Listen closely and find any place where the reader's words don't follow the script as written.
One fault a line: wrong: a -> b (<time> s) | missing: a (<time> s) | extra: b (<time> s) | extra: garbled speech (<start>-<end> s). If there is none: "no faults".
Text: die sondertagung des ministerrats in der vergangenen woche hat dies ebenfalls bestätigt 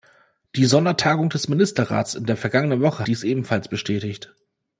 missing: hat (3.1 s)